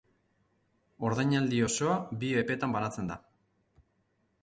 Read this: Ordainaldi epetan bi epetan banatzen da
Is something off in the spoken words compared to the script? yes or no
yes